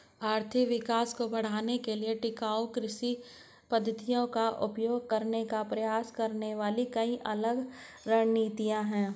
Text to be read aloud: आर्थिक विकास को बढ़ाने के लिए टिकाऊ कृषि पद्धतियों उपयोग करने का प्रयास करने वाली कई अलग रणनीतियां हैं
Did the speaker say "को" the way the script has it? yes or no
yes